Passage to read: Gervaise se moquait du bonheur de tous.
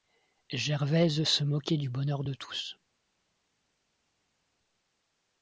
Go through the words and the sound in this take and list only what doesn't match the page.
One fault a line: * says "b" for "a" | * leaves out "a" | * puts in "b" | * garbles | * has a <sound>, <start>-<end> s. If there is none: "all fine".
all fine